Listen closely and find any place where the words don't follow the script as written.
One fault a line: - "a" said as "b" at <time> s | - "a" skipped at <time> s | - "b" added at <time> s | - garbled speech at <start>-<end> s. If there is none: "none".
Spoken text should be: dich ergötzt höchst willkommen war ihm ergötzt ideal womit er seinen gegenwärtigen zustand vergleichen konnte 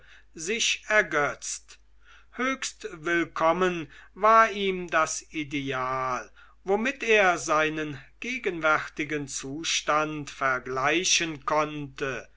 - "dich" said as "sich" at 0.3 s
- "ergötzt" said as "das" at 4.9 s